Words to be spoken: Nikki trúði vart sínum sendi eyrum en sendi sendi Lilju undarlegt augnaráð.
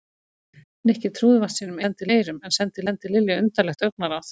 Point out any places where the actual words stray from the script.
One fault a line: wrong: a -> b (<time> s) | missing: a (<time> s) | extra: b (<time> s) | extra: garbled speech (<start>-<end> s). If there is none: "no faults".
no faults